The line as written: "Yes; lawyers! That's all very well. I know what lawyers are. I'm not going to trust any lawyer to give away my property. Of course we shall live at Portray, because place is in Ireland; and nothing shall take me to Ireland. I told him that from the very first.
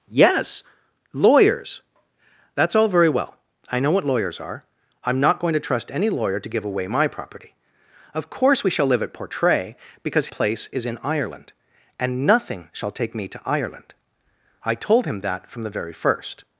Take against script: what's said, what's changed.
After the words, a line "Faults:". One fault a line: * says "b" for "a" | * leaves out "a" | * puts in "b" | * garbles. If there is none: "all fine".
"Yes; lawyers! That's all very well. I know what lawyers are. I'm not going to trust any lawyer to give away my property. Of course we shall live at Portray, because place is in Ireland; and nothing shall take me to Ireland. I told him that from the very first.
Faults:
all fine